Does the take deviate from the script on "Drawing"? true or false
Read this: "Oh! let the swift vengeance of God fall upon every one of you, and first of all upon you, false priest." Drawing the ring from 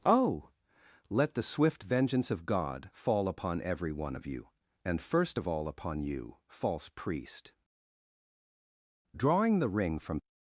false